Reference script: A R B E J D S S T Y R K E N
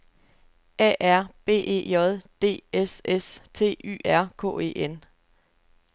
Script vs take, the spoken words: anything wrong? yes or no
no